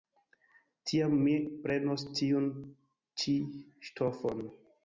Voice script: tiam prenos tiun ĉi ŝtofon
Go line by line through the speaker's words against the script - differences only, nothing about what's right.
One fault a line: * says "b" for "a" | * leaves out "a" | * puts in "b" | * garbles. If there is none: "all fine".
* puts in "mi"